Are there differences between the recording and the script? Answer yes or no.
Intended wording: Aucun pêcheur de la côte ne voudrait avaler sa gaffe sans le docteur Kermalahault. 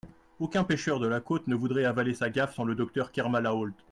no